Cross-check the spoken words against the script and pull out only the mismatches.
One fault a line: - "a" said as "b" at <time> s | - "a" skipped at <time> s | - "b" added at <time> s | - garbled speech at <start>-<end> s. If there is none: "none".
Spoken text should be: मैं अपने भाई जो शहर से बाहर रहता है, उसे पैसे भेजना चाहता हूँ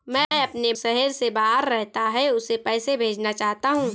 - "भाई जो" skipped at 0.7 s